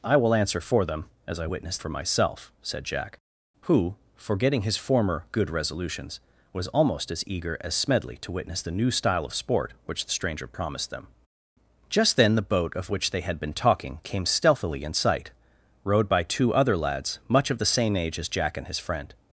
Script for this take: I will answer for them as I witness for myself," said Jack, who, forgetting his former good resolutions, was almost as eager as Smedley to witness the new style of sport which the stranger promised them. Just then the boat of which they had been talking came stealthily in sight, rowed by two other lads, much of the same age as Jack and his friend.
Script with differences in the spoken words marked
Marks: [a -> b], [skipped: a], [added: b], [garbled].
I will answer for them as I witness for myself," said Jack, who, forgetting his former good resolutions, was almost as eager as Smedley to witness the new style of sport which the stranger promised them. Just then the boat of which they had been talking came stealthily in sight, rowed by two other lads, much of the same age as Jack and his friend.